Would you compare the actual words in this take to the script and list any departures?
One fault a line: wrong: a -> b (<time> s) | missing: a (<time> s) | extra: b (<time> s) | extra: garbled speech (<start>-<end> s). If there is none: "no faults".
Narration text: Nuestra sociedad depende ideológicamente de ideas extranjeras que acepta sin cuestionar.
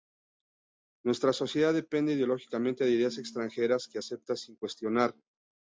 no faults